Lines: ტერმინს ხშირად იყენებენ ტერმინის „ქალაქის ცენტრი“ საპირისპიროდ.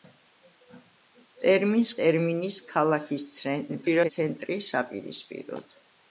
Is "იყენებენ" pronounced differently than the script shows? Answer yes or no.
yes